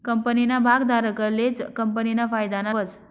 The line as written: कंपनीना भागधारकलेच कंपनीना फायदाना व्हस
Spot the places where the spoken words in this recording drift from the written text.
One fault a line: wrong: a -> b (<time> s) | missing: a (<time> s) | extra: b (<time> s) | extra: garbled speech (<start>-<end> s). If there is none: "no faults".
no faults